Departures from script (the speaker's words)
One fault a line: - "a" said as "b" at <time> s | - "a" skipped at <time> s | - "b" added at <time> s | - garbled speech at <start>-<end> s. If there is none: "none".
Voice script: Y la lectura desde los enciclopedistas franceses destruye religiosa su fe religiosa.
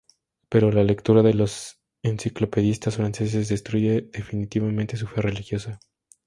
- "Y" said as "Pero" at 0.5 s
- "desde" said as "de" at 1.2 s
- "religiosa" said as "definitivamente" at 4.1 s